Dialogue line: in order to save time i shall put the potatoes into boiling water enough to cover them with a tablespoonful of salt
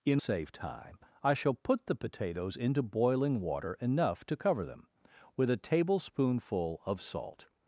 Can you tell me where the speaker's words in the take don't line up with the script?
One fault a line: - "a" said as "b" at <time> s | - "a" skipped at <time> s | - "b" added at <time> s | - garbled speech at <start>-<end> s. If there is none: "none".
- "order to" skipped at 0.2 s